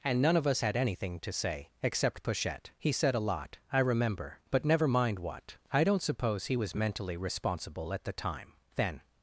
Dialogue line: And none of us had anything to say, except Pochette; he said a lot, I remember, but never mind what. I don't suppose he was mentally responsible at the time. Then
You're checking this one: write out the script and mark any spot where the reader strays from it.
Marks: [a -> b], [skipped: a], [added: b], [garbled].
And none of us had anything to say, except Pochette; he said a lot, I remember, but never mind what. I don't suppose he was mentally responsible at the time. Then